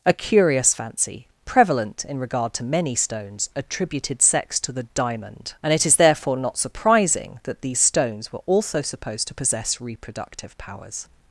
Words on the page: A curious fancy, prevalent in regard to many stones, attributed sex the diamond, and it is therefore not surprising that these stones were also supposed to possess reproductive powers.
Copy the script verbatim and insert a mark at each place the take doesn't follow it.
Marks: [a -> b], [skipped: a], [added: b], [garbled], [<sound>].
A curious fancy, prevalent in regard to many stones, attributed sex [added: to] the diamond, and it is therefore not surprising that these stones were also supposed to possess reproductive powers.